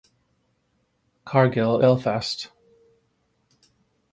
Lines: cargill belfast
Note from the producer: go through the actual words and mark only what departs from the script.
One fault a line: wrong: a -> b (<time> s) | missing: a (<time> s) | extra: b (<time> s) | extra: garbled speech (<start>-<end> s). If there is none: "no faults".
no faults